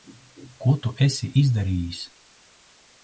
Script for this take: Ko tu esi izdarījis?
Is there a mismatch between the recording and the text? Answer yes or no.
no